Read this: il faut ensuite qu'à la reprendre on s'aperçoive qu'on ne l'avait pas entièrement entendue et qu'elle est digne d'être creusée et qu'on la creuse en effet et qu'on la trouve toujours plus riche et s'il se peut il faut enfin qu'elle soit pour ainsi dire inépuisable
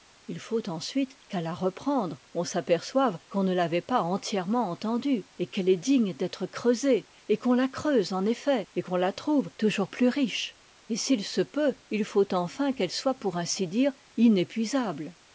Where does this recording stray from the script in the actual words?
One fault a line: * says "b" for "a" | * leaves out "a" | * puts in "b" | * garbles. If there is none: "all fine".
all fine